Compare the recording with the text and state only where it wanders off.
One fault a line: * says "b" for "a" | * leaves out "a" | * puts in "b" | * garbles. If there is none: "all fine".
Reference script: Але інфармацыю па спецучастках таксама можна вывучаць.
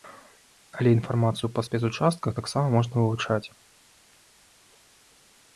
all fine